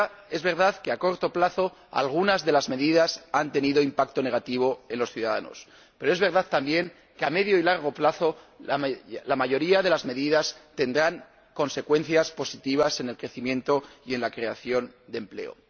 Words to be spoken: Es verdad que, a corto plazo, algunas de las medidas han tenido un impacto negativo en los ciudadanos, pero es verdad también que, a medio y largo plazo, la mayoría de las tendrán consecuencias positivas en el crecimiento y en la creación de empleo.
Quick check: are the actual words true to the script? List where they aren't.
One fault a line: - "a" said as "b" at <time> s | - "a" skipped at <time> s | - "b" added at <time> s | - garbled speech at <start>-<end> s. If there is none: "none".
- "medidas" added at 10.1 s